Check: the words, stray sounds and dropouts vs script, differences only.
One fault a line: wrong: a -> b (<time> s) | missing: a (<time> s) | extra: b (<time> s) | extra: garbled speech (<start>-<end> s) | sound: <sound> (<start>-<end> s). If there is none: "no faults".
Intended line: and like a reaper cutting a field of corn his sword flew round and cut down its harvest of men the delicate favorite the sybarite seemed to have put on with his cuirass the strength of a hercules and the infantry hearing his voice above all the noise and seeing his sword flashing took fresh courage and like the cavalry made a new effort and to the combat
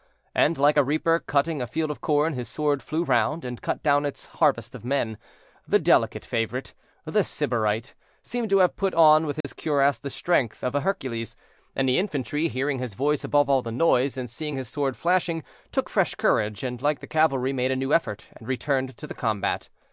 sound: dropout (9.4-9.4 s)
extra: returned (18.5 s)